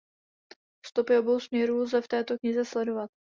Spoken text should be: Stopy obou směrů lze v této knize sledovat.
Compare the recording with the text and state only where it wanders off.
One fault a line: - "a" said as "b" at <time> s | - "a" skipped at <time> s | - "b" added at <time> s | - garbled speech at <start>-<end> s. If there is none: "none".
none